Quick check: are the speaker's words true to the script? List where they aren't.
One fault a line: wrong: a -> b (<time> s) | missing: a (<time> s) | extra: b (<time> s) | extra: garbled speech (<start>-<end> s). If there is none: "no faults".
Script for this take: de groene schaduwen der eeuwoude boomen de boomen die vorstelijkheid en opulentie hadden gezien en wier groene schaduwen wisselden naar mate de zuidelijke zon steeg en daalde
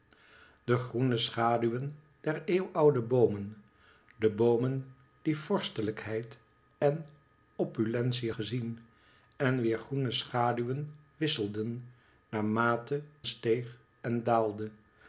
missing: hadden (8.3 s)
missing: de zuidelijke zon (13.0 s)